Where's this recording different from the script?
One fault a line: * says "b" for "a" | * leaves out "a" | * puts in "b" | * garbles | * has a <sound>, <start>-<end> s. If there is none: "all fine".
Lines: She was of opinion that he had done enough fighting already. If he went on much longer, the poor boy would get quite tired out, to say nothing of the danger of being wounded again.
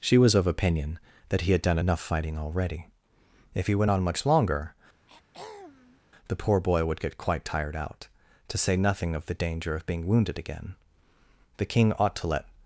* has a throat clearing, 5.1-6.0 s
* puts in "The King ought to let"